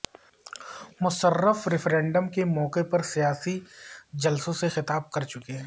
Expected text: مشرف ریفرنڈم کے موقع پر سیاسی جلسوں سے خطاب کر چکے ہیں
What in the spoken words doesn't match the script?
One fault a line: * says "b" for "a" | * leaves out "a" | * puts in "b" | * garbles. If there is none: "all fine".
all fine